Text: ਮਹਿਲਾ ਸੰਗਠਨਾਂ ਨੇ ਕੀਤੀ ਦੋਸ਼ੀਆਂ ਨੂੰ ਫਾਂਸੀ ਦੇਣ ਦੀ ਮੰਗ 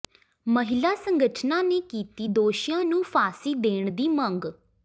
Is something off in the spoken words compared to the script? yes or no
no